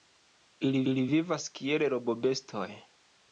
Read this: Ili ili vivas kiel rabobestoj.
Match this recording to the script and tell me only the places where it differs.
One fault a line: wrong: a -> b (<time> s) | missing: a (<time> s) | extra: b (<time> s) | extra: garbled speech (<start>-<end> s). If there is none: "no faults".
no faults